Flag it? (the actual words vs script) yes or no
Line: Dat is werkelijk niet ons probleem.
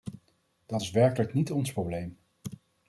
no